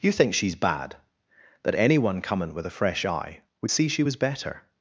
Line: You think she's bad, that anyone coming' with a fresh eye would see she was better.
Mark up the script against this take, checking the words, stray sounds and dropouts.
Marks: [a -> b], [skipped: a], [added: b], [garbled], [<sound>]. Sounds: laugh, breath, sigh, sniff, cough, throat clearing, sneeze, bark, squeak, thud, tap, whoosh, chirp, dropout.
You think she's bad, that anyone coming' with a fresh eye would see she was better.